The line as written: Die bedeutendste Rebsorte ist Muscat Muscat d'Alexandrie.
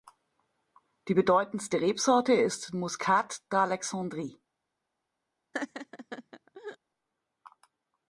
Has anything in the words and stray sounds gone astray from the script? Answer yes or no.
yes